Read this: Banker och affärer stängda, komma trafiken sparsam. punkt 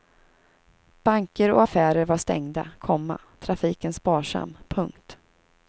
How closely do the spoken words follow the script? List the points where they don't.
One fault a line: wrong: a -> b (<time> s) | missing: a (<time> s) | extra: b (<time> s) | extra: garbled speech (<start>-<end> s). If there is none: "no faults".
extra: var (2.0 s)